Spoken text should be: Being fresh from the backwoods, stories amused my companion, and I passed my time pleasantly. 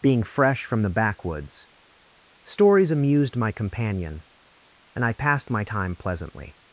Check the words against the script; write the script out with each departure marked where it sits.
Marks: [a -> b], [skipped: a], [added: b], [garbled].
Being fresh from the backwoods, stories amused my companion, and I passed my time pleasantly.